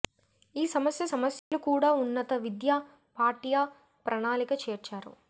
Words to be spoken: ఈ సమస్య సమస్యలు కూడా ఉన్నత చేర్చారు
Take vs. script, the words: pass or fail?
fail